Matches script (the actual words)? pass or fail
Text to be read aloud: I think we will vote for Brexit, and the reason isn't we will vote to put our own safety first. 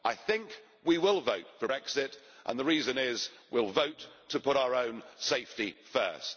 fail